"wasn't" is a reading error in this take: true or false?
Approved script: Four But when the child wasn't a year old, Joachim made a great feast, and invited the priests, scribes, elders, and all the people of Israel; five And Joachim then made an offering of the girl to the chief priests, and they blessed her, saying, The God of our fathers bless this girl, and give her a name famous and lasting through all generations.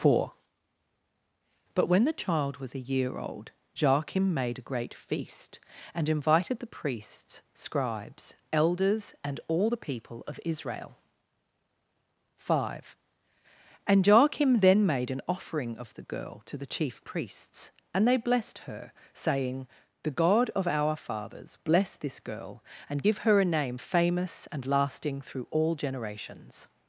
true